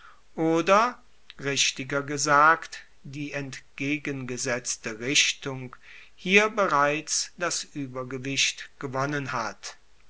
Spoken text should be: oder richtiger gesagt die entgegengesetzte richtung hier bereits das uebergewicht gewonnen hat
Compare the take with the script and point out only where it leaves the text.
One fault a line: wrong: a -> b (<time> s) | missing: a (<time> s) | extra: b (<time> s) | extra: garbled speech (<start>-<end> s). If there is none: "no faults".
no faults